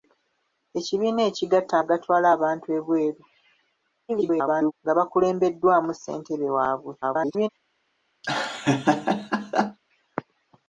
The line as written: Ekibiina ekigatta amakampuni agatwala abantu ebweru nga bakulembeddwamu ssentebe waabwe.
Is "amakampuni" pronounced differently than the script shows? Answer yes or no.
yes